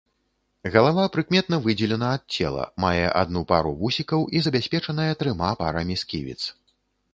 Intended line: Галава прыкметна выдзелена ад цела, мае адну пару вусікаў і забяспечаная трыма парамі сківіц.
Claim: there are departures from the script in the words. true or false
false